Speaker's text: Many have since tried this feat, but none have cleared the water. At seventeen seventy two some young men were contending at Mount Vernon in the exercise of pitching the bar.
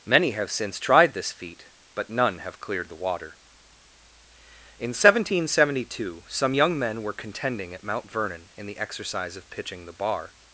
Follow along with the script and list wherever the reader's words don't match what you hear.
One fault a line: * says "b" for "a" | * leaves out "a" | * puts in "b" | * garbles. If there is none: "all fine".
* says "In" for "At"